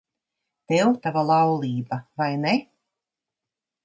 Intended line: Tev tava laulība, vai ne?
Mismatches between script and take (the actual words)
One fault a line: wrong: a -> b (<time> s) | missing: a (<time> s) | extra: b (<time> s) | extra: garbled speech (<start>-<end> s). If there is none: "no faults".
no faults